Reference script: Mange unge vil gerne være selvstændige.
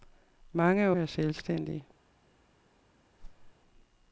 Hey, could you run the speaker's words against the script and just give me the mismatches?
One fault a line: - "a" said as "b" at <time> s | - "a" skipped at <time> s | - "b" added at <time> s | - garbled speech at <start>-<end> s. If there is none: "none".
- "unge vil gerne" skipped at 0.9 s